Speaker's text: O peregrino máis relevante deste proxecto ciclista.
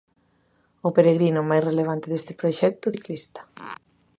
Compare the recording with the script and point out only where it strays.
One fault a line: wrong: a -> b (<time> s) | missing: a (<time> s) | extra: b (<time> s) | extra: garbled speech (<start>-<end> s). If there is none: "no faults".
no faults